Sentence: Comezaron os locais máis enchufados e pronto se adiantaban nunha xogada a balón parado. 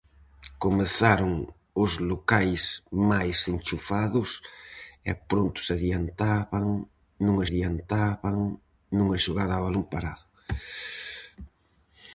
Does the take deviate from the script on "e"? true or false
false